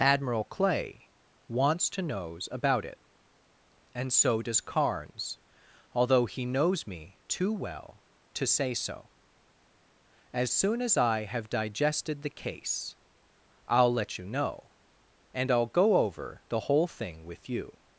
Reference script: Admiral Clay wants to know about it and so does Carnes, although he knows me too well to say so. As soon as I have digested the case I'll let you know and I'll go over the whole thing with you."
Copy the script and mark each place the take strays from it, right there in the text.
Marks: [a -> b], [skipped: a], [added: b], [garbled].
Admiral Clay wants to [know -> knows] about it and so does Carnes, although he knows me too well to say so. As soon as I have digested the case I'll let you know and I'll go over the whole thing with you."